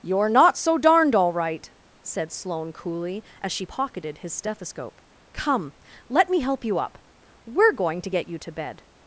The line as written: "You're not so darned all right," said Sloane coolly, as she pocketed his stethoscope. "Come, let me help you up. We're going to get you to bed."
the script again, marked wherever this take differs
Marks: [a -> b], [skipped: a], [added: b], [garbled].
"You're not so darned all right," said Sloane coolly, as she pocketed his stethoscope. "Come, let me help you up. We're going to get you to bed."